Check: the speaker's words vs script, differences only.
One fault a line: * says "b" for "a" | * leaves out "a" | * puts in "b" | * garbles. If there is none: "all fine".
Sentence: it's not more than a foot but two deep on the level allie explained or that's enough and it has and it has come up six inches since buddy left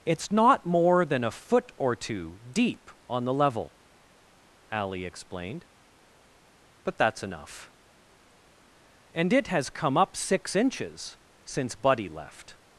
* says "or" for "but"
* says "but" for "or"
* leaves out "and it has"